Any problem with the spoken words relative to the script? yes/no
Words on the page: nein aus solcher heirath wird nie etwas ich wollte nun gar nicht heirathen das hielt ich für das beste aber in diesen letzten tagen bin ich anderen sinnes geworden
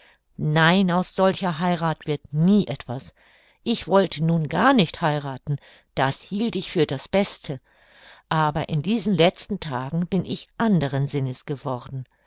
no